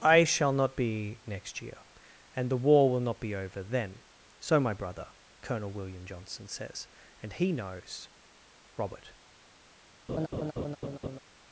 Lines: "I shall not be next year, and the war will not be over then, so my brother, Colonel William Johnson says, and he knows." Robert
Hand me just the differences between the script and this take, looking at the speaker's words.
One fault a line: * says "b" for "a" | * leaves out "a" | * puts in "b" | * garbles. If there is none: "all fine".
all fine